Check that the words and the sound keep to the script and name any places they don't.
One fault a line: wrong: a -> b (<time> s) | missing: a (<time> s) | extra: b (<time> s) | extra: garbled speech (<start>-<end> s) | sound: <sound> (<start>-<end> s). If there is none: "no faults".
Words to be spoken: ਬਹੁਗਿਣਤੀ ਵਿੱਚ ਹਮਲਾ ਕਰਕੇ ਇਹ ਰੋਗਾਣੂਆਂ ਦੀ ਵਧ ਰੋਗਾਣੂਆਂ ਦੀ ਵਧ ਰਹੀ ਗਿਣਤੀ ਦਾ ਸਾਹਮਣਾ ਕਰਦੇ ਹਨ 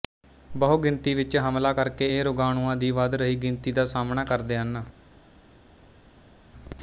missing: ਰੋਗਾਣੂਆਂ ਦੀ ਵਧ (3.2 s)